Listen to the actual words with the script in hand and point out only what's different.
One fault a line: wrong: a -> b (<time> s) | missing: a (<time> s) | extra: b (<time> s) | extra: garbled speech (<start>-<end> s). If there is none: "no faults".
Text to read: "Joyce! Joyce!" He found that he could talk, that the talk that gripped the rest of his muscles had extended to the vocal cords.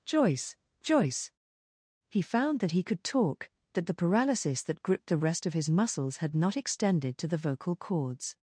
wrong: talk -> paralysis (3.9 s)
extra: not (6.3 s)